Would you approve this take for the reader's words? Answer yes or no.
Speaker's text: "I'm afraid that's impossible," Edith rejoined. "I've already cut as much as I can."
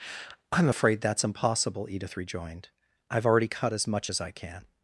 yes